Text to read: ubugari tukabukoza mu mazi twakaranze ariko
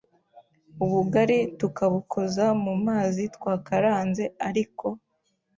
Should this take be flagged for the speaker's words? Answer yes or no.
no